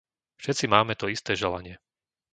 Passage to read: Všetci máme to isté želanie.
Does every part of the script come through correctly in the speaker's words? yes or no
yes